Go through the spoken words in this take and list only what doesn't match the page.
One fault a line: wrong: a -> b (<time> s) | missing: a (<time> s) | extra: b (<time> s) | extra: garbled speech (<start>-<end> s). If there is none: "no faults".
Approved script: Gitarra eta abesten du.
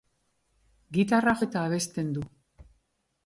no faults